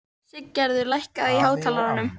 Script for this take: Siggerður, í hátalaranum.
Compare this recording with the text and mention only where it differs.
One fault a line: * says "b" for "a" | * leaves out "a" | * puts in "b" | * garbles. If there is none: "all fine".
* puts in "lækkaðu"